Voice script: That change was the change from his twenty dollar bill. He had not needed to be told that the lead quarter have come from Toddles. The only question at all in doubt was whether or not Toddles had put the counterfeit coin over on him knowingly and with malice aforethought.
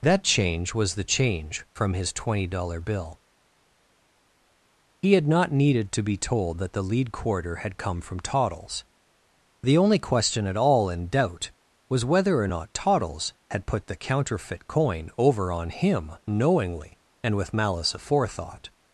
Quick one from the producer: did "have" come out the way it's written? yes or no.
no